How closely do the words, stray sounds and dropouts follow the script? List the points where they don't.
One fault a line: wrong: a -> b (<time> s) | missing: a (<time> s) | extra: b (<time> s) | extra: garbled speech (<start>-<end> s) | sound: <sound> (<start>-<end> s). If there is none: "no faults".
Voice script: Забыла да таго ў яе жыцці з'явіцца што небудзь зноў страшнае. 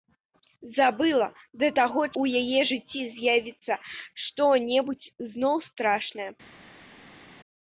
no faults